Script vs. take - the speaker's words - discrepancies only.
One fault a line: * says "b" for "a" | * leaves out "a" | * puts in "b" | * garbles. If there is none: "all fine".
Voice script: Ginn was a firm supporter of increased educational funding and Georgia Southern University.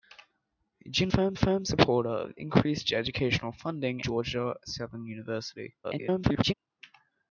* says "firm" for "was"
* leaves out "and"
* garbles